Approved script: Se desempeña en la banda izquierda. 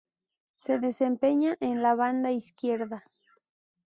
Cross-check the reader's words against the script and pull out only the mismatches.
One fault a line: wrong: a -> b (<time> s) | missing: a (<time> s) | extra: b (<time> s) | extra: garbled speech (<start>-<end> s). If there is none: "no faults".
no faults